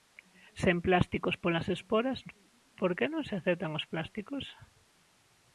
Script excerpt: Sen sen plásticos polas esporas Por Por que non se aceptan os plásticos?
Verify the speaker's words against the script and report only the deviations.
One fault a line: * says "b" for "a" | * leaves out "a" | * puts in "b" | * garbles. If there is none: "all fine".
* leaves out "sen"
* leaves out "Por"